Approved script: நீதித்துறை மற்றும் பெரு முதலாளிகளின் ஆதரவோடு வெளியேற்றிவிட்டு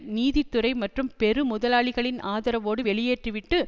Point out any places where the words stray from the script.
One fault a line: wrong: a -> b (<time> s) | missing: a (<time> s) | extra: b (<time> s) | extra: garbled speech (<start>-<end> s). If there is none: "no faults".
no faults